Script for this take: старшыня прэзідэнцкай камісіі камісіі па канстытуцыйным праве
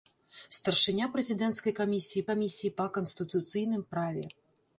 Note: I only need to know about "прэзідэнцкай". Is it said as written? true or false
true